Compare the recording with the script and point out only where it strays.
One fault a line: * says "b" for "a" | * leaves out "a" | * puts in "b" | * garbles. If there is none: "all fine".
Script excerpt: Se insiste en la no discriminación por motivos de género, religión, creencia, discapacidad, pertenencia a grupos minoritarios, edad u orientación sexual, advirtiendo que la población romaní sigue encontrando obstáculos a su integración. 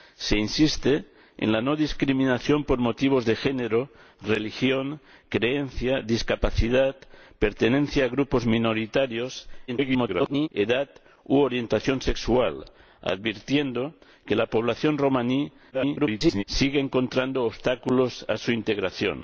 * garbles
* garbles